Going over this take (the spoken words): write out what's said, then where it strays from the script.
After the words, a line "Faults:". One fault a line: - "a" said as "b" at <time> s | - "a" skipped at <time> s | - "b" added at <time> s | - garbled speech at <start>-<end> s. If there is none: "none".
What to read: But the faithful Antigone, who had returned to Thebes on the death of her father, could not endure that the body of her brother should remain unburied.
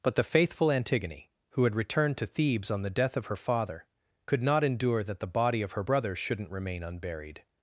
But the faithful Antigone, who had returned to Thebes on the death of her father, could not endure that the body of her brother shouldn't remain unburied.
Faults:
- "should" said as "shouldn't" at 6.1 s